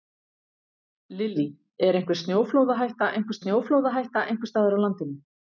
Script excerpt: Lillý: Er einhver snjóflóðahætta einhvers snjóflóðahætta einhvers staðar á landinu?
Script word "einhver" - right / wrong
right